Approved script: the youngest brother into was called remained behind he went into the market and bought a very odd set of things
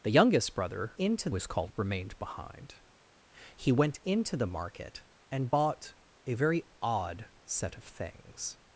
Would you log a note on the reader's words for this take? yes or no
no